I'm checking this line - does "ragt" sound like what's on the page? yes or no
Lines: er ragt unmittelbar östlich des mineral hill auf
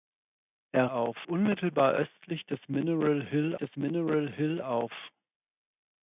no